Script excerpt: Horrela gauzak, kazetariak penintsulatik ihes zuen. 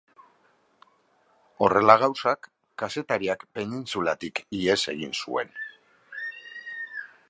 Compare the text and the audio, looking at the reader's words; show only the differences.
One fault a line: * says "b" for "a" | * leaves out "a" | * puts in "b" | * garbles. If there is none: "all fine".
* puts in "egin"